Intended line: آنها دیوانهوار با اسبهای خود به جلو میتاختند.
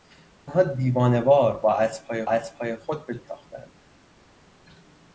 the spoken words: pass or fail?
fail